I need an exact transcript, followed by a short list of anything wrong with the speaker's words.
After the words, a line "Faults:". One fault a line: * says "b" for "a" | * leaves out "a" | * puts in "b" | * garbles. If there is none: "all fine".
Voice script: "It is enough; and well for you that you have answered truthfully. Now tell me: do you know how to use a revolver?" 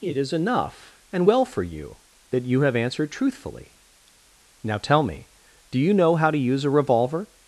"It is enough; and well for you that you have answered truthfully. Now tell me: do you know how to use a revolver?"
Faults:
all fine